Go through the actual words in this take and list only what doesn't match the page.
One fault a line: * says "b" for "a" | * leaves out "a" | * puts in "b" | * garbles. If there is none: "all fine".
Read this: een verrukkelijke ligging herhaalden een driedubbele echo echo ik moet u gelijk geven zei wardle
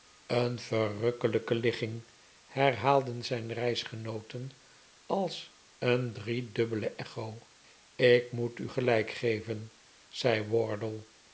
* puts in "zijn reisgenooten als"
* leaves out "echo"